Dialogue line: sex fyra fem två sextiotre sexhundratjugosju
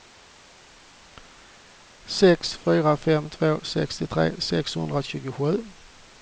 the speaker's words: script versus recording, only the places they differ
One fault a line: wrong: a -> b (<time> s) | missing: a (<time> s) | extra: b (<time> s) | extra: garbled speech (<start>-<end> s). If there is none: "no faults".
no faults